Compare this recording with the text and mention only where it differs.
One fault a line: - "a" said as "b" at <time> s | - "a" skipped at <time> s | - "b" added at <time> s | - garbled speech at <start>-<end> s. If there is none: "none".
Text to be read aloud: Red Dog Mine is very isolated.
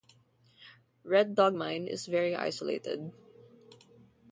none